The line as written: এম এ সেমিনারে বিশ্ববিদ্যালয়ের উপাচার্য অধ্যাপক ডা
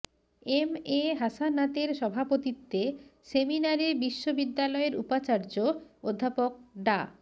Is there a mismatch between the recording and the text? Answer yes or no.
yes